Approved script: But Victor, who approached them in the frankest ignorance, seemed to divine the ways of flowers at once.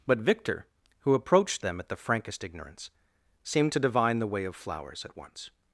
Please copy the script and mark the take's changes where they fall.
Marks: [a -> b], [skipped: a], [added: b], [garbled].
But Victor, who approached them [in -> at] the frankest ignorance, seemed to divine the [ways -> way] of flowers at once.